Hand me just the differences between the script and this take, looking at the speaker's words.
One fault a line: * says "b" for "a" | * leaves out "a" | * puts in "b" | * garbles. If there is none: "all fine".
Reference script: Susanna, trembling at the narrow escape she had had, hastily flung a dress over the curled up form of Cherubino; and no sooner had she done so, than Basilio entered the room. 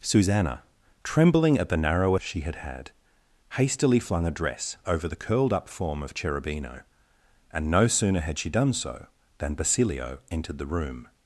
* leaves out "escape"